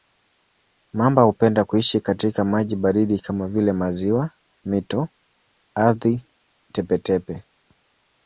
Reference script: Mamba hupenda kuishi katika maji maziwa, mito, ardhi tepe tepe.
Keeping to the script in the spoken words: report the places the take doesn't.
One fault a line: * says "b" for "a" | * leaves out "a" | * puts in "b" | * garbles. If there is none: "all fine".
* puts in "baridi kama vile"